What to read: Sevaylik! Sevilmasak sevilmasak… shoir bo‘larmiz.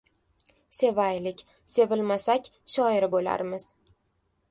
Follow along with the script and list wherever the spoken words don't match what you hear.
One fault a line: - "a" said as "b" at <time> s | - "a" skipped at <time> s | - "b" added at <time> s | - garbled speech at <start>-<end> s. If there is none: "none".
- "sevilmasak" skipped at 2.5 s